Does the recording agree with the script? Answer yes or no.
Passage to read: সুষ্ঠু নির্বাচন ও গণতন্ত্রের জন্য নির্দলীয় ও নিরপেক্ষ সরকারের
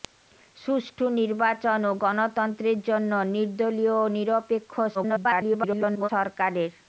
no